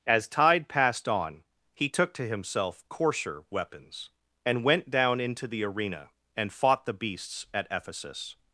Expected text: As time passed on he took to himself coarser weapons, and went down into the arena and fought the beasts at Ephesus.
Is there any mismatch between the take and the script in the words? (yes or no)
yes